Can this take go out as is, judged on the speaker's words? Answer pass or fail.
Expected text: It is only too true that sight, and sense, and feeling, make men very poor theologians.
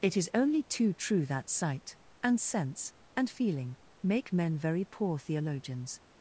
pass